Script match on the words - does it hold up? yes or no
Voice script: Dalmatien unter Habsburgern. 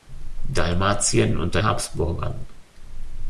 yes